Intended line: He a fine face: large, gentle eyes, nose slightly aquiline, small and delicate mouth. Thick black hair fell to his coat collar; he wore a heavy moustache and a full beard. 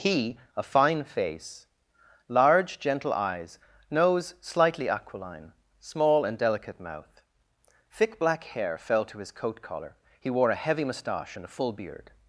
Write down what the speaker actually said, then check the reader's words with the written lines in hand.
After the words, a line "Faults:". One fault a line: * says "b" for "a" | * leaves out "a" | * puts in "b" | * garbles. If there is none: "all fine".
He a fine face: large, gentle eyes, nose slightly aquiline, small and delicate mouth. Thick black hair fell to his coat collar; he wore a heavy moustache and a full beard.
Faults:
all fine